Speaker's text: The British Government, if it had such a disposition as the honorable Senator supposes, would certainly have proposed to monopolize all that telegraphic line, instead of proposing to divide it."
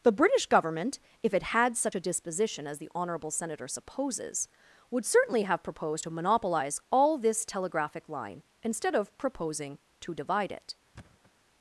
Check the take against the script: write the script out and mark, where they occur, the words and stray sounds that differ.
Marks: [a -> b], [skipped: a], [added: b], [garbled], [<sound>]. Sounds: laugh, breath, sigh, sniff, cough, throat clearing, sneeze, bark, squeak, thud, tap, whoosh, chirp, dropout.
The British Government, if it had such a disposition as the honorable Senator supposes, would certainly have proposed to monopolize all [that -> this] telegraphic line, instead of proposing to divide it." [thud]